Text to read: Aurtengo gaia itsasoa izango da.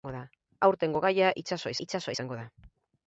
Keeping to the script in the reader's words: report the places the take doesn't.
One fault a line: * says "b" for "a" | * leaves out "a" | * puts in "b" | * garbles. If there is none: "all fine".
* puts in "itsasoa"